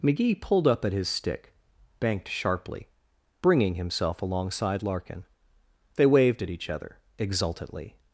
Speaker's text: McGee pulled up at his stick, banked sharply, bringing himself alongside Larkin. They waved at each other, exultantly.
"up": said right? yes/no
yes